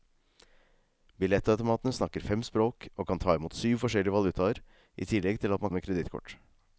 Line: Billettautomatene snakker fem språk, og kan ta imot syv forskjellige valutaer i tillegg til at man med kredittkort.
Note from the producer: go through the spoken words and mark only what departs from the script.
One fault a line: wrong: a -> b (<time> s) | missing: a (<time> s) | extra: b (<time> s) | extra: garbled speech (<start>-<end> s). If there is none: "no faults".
no faults